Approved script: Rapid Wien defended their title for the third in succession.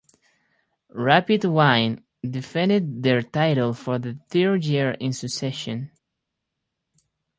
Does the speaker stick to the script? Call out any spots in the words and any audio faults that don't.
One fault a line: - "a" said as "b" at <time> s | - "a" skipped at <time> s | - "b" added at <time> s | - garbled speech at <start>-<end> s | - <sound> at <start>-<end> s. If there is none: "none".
- "year" added at 4.7 s